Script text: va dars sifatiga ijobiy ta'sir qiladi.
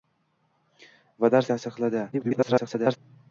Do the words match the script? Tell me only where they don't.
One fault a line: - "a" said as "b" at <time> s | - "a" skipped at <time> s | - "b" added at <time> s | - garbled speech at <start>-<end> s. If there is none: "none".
- "sifatiga ijobiy" skipped at 1.5 s
- garbled speech at 2.1-3.0 s